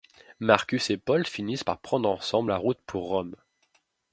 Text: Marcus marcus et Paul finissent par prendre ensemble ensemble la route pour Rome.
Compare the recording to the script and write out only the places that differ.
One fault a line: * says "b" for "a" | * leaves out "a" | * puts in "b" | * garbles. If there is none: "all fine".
* leaves out "marcus"
* leaves out "ensemble"